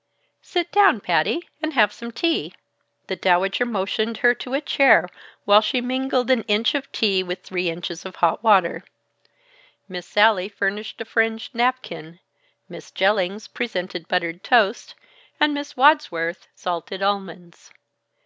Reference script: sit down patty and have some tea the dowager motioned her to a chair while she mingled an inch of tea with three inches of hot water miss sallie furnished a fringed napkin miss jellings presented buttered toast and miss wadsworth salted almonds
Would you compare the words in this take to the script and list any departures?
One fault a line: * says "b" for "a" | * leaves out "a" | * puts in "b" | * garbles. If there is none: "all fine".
all fine